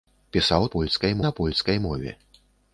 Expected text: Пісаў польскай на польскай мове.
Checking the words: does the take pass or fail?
pass